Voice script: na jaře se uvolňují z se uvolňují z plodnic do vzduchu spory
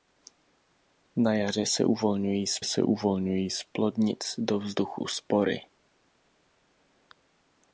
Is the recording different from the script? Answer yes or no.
no